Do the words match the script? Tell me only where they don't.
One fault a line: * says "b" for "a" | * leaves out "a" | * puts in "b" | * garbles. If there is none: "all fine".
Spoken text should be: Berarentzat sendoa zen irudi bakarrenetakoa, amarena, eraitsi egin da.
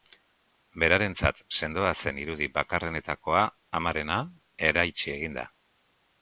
all fine